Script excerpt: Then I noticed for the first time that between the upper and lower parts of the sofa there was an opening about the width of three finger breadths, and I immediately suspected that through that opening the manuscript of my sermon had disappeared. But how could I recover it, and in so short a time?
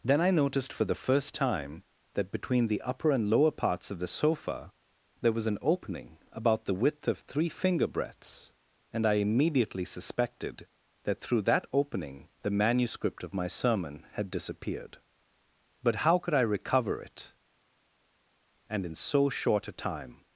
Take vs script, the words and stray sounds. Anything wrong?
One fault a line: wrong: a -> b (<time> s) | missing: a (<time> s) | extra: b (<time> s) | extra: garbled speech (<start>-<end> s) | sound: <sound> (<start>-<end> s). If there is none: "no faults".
no faults